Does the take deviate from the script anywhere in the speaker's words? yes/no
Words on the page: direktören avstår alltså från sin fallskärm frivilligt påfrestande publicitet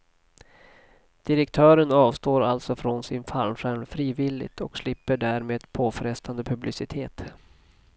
yes